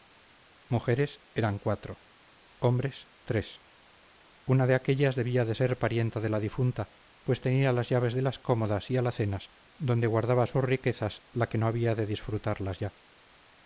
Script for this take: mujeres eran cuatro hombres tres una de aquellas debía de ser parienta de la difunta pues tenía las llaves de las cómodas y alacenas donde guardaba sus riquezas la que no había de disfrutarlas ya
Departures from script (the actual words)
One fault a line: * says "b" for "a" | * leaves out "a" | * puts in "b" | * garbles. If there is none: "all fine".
all fine